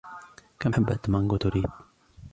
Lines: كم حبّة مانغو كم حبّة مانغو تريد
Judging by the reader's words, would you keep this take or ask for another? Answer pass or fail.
fail